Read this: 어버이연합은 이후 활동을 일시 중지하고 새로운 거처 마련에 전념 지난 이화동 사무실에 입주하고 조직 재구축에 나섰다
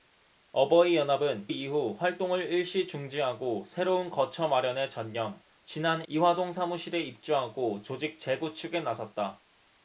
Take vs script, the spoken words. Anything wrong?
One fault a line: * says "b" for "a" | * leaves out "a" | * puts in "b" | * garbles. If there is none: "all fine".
all fine